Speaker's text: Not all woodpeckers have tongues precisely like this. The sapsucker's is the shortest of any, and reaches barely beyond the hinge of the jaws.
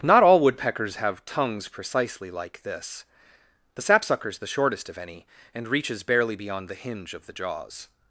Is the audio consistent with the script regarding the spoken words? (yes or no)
no